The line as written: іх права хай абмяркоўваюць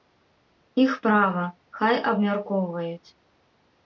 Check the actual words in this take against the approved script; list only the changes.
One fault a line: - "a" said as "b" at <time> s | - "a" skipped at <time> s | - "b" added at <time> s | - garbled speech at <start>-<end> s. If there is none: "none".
none